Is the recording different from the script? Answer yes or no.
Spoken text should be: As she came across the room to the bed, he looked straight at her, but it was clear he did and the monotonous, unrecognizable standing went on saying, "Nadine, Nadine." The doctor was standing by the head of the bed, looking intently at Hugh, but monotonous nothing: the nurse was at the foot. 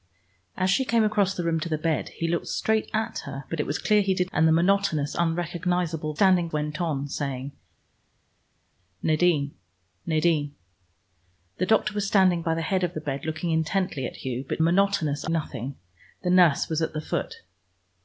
no